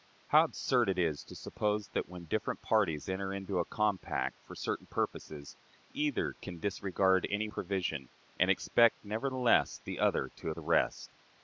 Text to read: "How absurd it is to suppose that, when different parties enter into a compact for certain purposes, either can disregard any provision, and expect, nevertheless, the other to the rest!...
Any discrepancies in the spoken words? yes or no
no